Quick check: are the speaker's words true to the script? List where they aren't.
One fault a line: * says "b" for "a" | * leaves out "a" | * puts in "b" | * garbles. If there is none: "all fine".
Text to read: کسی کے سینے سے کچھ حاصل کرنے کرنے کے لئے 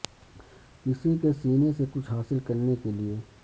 * leaves out "کرنے"